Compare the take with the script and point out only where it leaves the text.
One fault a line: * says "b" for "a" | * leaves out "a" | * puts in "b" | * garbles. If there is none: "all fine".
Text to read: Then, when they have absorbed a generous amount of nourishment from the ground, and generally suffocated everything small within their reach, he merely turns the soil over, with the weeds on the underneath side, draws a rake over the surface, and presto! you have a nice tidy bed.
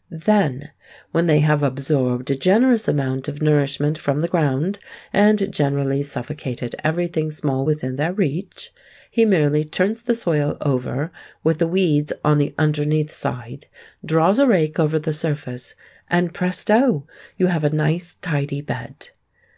all fine